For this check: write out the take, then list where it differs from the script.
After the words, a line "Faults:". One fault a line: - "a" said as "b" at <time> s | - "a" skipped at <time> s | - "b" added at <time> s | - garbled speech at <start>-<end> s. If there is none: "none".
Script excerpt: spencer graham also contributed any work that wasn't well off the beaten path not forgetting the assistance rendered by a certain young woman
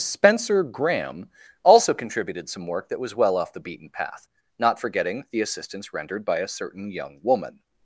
spencer graham also contributed some work that was well off the beaten path not forgetting the assistance rendered by a certain young woman
Faults:
- "any" said as "some" at 2.5 s
- "wasn't" said as "was" at 3.0 s